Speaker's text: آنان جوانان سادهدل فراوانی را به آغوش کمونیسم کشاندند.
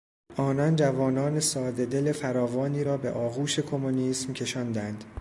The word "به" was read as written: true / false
true